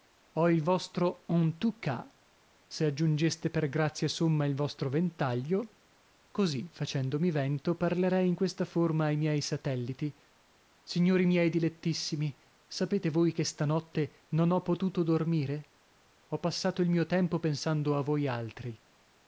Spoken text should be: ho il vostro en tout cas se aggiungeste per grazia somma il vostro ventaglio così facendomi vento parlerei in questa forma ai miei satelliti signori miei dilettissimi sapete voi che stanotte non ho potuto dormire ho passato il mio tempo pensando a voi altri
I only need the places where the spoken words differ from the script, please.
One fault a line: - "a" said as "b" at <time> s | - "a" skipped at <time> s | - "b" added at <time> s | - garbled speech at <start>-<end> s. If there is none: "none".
none